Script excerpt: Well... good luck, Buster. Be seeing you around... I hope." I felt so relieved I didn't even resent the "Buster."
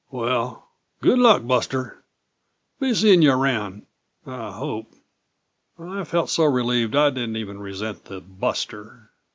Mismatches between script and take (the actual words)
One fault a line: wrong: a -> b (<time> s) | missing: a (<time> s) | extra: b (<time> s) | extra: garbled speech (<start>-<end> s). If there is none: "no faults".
no faults